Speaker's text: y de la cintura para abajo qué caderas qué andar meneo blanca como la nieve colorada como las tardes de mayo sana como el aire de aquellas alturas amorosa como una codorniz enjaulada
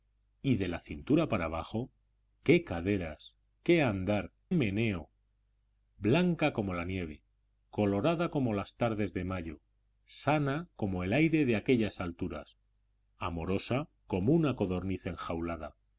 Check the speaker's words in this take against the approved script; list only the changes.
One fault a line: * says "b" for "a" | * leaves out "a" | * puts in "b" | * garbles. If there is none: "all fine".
all fine